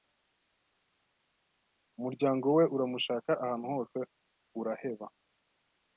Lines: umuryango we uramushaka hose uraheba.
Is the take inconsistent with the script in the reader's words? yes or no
yes